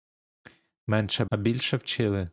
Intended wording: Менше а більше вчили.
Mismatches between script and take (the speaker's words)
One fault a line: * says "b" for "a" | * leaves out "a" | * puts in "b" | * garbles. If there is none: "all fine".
all fine